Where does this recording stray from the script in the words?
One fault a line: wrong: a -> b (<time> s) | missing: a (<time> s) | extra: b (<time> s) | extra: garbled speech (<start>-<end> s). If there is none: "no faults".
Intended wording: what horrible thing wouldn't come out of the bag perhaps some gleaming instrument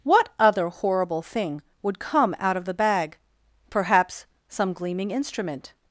extra: other (0.4 s)
wrong: wouldn't -> would (1.8 s)